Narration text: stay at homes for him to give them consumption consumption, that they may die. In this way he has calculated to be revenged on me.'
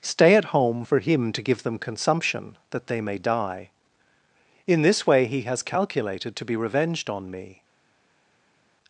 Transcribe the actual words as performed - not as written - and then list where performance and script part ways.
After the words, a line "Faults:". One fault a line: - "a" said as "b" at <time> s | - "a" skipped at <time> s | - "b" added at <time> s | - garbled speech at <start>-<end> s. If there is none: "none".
stay at home for him to give them consumption, that they may die. In this way he has calculated to be revenged on me.'
Faults:
- "homes" said as "home" at 0.5 s
- "consumption" skipped at 2.5 s